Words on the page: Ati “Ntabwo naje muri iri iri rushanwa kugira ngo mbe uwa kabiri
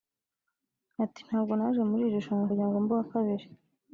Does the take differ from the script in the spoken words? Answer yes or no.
yes